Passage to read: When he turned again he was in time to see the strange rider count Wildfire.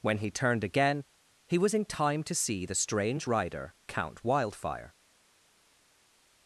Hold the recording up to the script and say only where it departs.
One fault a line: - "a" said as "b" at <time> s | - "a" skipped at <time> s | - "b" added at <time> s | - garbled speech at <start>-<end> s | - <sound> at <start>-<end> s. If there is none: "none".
none